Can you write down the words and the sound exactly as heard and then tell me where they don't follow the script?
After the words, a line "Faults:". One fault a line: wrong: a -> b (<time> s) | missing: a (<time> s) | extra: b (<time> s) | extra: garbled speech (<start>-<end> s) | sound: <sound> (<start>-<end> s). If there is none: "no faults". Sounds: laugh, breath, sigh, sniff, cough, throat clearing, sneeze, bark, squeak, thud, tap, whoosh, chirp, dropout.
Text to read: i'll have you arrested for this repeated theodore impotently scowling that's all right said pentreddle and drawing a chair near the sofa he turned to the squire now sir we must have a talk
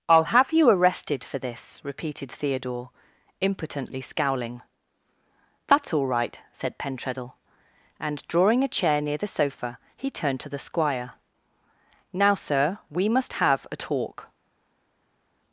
i'll have you arrested for this repeated theodore impotently scowling that's all right said pentreddle and drawing a chair near the sofa he turned to the squire now sir we must have a talk
Faults:
no faults